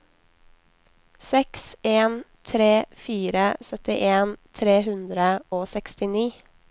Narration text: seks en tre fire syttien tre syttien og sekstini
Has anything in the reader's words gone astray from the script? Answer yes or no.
yes